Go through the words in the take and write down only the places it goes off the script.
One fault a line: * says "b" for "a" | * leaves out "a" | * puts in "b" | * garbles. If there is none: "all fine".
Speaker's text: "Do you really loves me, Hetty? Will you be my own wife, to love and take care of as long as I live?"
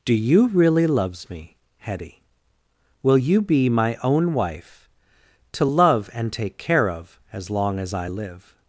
all fine